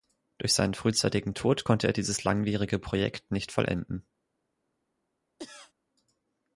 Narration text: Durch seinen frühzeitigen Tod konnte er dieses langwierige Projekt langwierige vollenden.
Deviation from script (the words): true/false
true